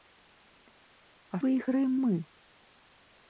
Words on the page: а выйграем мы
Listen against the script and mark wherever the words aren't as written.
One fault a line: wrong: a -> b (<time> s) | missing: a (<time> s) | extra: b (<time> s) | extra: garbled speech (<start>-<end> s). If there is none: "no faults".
no faults